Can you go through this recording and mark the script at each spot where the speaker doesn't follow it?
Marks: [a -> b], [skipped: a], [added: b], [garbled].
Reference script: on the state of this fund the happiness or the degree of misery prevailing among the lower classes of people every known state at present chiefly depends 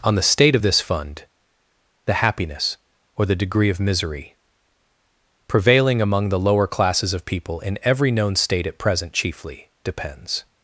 on the state of this fund the happiness or the degree of misery prevailing among the lower classes of people [added: in] every known state at present chiefly depends